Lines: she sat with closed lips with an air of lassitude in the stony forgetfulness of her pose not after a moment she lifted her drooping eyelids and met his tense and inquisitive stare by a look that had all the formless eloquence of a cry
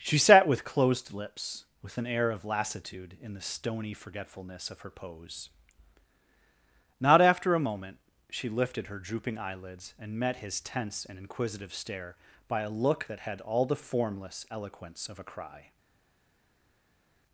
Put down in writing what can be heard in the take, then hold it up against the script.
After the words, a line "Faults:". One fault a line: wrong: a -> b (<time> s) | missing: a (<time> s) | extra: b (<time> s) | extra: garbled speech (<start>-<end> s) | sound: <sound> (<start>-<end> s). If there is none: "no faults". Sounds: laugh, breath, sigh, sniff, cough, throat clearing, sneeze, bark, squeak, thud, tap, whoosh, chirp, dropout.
she sat with closed lips with an air of lassitude in the stony forgetfulness of her pose not after a moment she lifted her drooping eyelids and met his tense and inquisitive stare by a look that had all the formless eloquence of a cry
Faults:
no faults